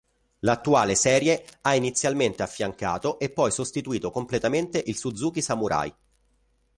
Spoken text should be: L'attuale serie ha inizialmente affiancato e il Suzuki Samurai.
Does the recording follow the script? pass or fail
fail